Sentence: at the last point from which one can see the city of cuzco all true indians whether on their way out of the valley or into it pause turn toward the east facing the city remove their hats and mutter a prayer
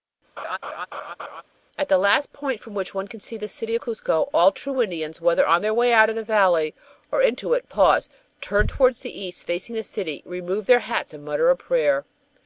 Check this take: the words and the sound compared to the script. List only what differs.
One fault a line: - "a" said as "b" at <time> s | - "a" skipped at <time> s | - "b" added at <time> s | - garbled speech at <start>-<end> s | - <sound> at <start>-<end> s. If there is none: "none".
- laugh at 0.4-1.4 s
- "of" skipped at 3.8 s